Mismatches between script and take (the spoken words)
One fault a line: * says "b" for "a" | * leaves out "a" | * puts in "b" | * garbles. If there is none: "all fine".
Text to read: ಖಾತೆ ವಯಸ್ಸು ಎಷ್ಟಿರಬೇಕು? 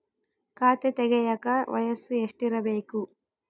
* puts in "ತೆಗೆಯಕ"